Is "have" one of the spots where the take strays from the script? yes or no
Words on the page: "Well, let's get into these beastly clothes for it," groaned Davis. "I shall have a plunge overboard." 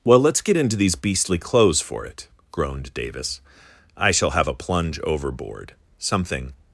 no